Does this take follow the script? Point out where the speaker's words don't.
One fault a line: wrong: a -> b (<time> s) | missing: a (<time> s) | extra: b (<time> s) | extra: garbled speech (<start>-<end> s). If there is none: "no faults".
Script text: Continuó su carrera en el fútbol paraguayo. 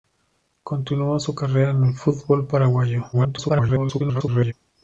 extra: garbled speech (3.1-4.5 s)